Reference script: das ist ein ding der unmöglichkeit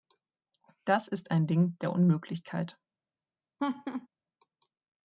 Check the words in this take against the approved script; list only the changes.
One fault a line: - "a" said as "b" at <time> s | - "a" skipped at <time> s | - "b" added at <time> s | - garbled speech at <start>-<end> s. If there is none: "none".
none